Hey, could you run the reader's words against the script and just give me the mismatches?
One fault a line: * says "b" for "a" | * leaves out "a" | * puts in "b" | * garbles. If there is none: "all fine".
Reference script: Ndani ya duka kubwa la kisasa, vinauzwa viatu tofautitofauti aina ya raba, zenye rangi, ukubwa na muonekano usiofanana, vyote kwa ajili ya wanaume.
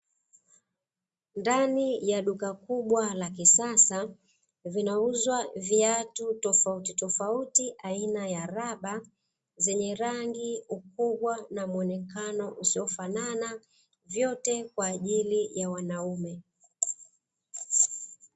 all fine